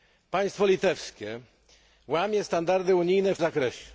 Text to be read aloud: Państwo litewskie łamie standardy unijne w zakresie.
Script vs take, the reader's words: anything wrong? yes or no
no